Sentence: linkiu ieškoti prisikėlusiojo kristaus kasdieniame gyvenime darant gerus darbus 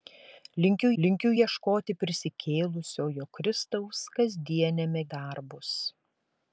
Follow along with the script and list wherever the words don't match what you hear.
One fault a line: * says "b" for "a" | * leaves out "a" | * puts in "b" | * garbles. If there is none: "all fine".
* puts in "linkiu"
* leaves out "gyvenime darant gerus"